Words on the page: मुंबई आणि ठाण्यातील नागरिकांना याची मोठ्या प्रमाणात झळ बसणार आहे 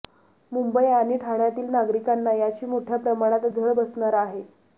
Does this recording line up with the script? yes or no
yes